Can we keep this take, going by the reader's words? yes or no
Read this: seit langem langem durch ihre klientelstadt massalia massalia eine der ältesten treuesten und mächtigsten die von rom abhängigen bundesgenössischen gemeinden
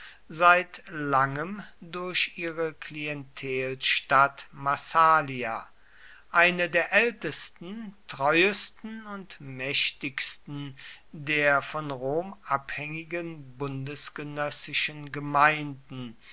no